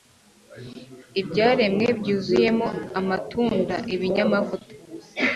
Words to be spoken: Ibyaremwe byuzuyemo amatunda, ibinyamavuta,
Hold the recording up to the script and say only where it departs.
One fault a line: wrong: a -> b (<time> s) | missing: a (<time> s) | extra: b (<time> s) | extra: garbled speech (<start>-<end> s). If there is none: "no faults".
no faults